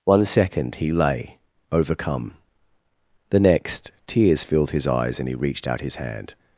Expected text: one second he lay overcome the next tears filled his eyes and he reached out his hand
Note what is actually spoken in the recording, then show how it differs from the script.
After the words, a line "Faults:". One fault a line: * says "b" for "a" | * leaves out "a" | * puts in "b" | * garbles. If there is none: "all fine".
one second he lay overcome the next tears filled his eyes and he reached out his hand
Faults:
all fine